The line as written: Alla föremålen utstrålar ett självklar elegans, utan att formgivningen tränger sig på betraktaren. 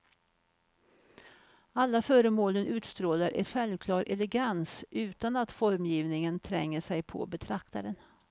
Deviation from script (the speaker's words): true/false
false